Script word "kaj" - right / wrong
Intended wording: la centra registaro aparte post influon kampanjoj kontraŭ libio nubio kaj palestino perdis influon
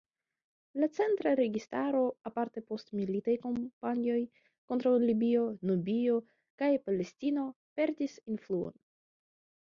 right